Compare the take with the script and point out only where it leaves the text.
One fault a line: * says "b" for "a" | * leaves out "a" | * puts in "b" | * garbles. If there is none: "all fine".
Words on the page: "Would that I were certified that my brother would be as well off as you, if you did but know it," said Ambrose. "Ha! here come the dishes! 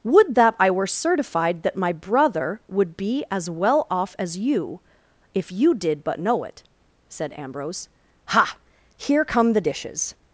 all fine